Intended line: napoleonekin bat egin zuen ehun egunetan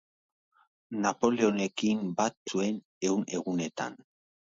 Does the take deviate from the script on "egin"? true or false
true